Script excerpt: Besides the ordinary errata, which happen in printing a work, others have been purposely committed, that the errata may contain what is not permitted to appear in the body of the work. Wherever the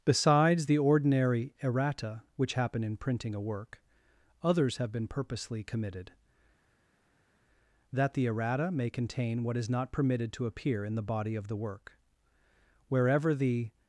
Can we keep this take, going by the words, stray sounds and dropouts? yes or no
yes